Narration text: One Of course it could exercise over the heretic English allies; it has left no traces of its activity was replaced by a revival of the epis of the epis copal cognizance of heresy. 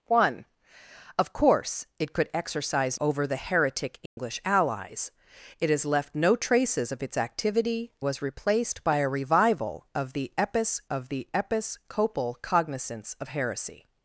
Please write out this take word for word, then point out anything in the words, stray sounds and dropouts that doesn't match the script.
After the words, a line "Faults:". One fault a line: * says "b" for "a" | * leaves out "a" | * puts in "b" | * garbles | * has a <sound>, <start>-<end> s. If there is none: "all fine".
One Of course it could exercise over the heretic English allies; it has left no traces of its activity was replaced by a revival of the epis of the epis copal cognizance of heresy.
Faults:
* has a dropout, 4.1-4.2 s